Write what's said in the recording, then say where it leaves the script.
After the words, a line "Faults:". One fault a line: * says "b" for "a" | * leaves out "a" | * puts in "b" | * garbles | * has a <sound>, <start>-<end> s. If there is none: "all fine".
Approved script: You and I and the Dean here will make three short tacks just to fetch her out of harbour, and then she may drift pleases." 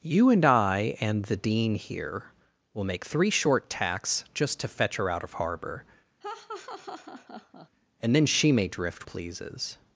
You and I and the Dean here will make three short tacks just to fetch her out of harbour, and then she may drift pleases."
Faults:
* has a laugh, 6.2-7.7 s